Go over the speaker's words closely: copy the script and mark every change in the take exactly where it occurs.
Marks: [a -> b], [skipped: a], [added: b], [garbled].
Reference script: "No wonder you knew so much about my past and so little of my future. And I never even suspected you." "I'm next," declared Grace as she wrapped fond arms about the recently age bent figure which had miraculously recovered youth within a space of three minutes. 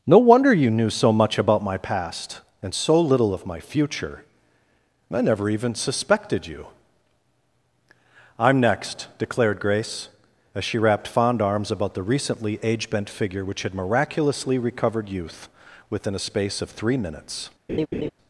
"No wonder you knew so much about my past and so little of my future. [skipped: And] I never even suspected you." "I'm next," declared Grace as she wrapped fond arms about the recently age bent figure which had miraculously recovered youth within a space of three minutes.